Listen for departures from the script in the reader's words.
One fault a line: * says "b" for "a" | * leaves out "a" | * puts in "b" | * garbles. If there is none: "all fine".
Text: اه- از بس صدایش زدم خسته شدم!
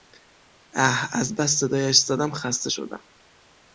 all fine